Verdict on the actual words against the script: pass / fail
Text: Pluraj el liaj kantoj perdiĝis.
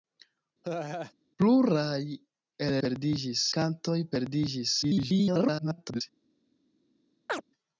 fail